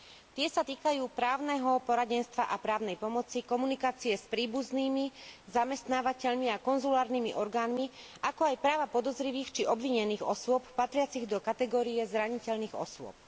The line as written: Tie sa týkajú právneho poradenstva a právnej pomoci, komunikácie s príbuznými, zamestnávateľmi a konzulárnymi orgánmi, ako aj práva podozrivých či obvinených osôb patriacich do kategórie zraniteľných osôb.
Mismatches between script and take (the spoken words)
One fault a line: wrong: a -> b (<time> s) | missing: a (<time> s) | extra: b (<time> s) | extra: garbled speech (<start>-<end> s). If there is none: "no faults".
no faults